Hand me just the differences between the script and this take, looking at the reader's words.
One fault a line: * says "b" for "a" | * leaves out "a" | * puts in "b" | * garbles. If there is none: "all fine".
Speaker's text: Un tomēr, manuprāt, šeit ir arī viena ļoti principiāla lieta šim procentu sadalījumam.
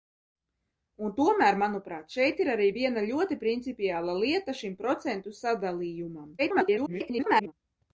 * garbles